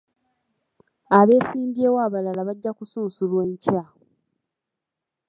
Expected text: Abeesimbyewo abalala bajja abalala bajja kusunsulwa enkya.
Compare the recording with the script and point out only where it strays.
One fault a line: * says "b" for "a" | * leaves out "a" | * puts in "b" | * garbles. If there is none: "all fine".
* leaves out "abalala bajja"